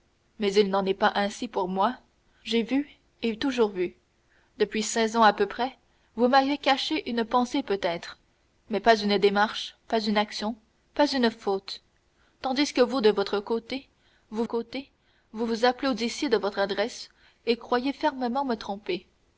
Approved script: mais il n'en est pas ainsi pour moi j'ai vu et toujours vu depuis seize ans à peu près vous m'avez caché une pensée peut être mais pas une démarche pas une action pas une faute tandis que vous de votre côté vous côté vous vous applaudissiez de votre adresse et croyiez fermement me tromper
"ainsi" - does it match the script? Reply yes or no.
yes